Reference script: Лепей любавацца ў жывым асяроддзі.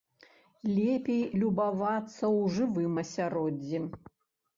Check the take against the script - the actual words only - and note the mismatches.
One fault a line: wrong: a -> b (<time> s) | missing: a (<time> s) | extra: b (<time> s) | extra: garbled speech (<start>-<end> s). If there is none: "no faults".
no faults